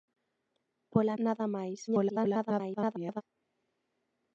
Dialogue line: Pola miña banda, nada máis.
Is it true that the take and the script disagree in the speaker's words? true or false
true